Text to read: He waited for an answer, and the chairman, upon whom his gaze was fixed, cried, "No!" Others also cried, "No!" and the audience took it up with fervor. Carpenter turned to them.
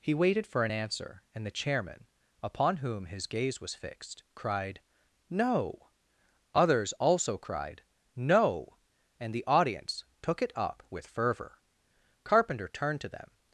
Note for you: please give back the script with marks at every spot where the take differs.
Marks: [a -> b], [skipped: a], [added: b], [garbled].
He waited for an answer, and the chairman, upon whom his gaze was fixed, cried, "No!" Others also cried, "No!" and the audience took it up with fervor. Carpenter turned to them.